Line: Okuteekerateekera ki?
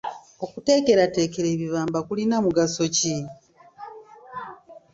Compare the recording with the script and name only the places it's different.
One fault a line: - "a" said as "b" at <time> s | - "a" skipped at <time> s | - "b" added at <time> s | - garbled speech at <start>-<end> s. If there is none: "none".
- "ebibamba kulina mugaso" added at 1.6 s